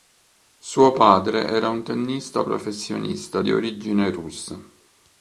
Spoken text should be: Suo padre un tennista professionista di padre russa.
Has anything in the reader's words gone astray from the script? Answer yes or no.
yes